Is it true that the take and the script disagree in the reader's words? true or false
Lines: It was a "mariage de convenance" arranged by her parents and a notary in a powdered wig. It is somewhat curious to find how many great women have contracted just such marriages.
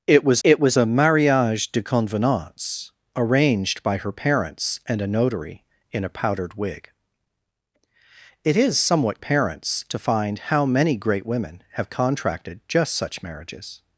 true